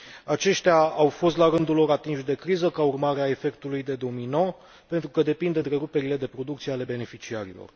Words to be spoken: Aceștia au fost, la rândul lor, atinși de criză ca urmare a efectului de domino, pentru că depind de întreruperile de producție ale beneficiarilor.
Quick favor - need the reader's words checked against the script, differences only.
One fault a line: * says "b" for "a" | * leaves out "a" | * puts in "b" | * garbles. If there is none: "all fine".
all fine